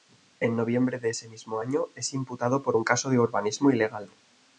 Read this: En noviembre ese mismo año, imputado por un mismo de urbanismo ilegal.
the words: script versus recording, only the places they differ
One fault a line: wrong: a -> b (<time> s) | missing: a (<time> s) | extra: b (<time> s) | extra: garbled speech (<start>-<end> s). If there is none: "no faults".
extra: de (1.0 s)
extra: es (2.0 s)
wrong: mismo -> caso (2.8 s)